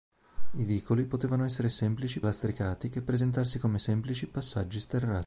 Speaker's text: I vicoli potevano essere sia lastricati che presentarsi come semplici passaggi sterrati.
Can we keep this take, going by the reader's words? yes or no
no